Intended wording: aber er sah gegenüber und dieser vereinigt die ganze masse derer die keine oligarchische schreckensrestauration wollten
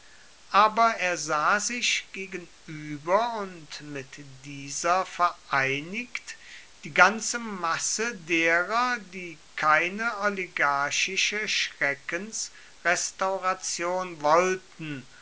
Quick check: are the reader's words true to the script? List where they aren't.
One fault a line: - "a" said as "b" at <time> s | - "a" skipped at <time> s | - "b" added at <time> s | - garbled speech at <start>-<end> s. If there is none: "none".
- "sich" added at 1.6 s
- "mit" added at 3.8 s